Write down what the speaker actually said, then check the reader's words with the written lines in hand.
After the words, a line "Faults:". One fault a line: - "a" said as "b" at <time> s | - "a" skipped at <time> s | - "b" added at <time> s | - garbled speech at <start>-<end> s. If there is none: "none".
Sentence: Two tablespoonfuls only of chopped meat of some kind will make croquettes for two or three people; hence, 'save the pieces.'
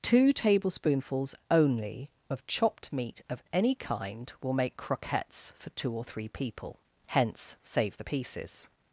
Two tablespoonfuls only of chopped meat of any kind will make croquettes for two or three people; hence, 'save the pieces.'
Faults:
- "some" said as "any" at 3.5 s